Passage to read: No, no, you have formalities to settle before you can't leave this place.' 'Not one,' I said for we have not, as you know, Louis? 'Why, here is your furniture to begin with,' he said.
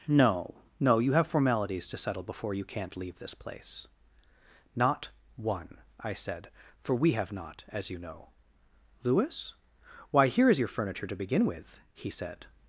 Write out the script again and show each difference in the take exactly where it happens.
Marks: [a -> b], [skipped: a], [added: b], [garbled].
No, no, you have formalities to settle before you can't leave this place.' 'Not one,' I said for we have not, as you know, Louis? 'Why, here is your furniture to begin with,' he said.